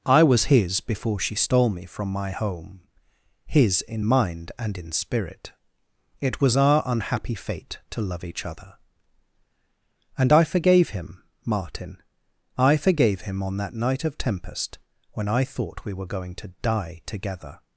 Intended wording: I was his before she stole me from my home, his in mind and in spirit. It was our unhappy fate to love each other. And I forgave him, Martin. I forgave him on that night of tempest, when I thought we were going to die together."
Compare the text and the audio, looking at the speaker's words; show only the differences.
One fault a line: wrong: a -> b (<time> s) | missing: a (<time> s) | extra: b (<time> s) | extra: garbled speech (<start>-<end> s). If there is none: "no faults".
no faults